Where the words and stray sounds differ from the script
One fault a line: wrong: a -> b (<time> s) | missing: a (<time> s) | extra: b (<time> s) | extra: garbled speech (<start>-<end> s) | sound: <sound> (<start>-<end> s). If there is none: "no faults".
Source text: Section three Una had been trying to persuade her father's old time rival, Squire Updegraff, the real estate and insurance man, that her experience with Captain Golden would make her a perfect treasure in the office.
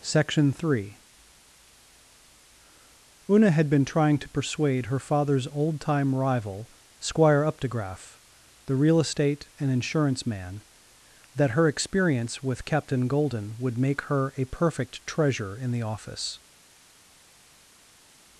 no faults